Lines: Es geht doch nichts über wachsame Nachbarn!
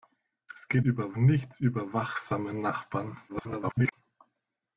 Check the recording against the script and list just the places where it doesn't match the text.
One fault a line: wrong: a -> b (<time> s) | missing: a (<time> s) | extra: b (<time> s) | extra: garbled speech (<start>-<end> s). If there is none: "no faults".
wrong: doch -> über (0.8 s)
extra: garbled speech (3.3-3.9 s)